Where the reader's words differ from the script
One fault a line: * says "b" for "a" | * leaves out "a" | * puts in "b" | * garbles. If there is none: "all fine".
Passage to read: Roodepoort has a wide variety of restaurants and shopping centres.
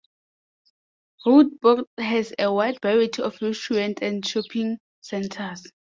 all fine